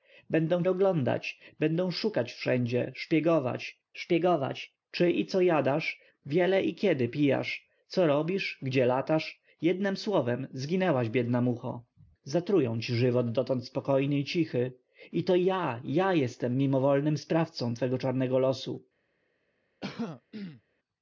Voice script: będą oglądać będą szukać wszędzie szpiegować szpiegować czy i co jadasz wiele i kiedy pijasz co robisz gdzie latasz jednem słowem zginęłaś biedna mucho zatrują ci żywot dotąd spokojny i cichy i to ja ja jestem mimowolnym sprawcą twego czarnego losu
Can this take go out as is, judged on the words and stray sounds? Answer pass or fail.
fail